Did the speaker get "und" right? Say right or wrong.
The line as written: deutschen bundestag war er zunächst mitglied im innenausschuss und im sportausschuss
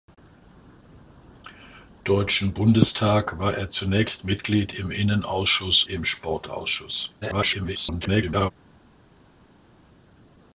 wrong